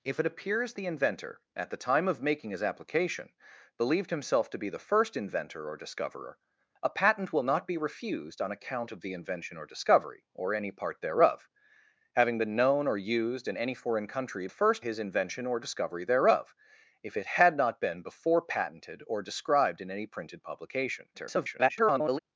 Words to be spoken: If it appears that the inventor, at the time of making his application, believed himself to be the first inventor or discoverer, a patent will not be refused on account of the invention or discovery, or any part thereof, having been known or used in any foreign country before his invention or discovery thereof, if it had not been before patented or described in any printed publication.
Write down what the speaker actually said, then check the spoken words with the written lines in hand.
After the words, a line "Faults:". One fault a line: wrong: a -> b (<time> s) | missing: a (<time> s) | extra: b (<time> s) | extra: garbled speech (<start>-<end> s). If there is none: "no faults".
If it appears the inventor, at the time of making his application, believed himself to be the first inventor or discoverer, a patent will not be refused on account of the invention or discovery, or any part thereof, having been known or used in any foreign country first his invention or discovery thereof, if it had not been before patented or described in any printed publication. [garbled]
Faults:
missing: that (0.7 s)
wrong: before -> first (14.5 s)
extra: garbled speech (21.1-22.2 s)